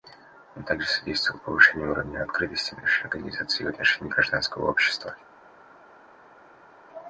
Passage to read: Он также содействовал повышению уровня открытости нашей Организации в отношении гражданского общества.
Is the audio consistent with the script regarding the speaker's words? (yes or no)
yes